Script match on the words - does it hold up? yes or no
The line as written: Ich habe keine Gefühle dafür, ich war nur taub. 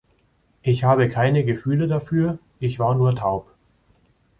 yes